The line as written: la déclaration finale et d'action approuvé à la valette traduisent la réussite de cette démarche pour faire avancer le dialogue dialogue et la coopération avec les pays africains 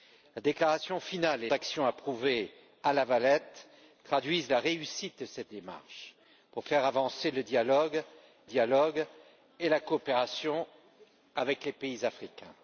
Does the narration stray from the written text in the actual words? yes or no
no